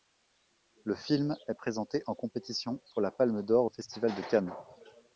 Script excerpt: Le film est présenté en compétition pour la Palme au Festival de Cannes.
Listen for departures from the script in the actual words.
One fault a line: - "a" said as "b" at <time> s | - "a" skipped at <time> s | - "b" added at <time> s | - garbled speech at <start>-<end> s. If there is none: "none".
- "d'or" added at 3.4 s